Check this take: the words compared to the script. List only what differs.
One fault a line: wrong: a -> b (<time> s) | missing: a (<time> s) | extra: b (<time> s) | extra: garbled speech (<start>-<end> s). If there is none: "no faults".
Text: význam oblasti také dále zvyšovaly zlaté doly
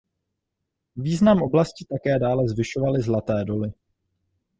no faults